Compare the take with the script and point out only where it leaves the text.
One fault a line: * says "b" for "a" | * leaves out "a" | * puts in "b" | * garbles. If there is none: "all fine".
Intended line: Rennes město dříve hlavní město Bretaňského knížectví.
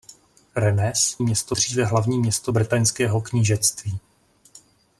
all fine